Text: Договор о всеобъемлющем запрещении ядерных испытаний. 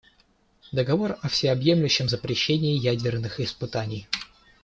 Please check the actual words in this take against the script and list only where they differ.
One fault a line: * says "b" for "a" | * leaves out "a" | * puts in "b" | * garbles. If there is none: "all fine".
all fine